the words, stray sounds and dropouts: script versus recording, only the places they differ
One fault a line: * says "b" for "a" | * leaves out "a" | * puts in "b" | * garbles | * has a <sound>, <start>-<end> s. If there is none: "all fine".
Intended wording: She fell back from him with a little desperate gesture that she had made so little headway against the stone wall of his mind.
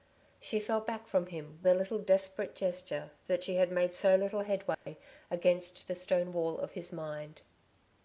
* leaves out "with"
* has a dropout, 4.7-4.9 s